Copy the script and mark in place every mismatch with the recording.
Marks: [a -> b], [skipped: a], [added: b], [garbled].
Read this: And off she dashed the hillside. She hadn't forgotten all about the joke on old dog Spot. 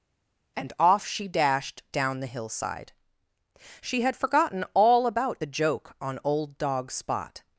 And off she dashed [added: down] the hillside. She [hadn't -> had] forgotten all about the joke on old dog Spot.